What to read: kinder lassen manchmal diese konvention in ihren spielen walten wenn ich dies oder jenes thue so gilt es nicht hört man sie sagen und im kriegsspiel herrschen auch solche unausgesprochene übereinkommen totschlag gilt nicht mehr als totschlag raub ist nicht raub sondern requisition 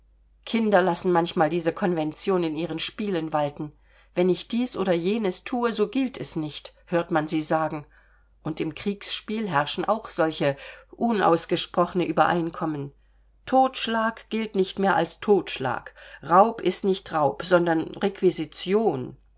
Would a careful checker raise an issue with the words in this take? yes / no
no